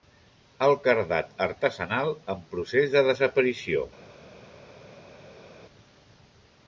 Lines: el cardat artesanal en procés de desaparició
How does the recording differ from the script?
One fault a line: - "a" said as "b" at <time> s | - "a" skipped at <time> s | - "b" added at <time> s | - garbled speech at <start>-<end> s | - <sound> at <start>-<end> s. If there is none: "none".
none